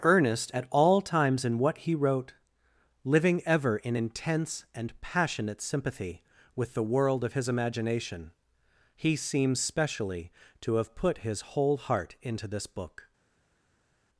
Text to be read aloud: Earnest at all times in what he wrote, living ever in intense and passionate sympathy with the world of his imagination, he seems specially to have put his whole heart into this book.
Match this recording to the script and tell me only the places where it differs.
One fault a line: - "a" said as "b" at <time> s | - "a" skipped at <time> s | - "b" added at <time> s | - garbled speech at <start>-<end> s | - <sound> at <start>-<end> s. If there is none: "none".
none